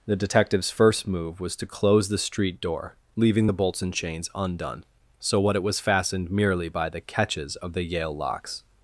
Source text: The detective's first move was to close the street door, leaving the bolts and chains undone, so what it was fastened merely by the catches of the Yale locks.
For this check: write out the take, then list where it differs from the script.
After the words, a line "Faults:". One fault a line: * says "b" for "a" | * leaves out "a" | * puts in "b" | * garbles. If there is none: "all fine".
The detective's first move was to close the street door, leaving the bolts and chains undone, so what it was fastened merely by the catches of the Yale locks.
Faults:
all fine